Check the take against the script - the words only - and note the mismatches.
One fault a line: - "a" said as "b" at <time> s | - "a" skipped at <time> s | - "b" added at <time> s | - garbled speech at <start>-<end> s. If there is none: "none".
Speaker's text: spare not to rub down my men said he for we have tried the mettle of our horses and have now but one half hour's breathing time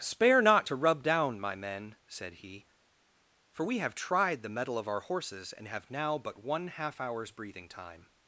none